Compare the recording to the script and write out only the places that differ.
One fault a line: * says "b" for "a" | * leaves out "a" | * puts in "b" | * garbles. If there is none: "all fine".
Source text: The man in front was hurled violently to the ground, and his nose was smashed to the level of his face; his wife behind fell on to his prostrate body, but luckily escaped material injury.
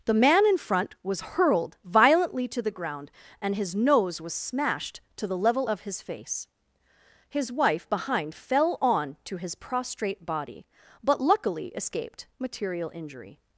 all fine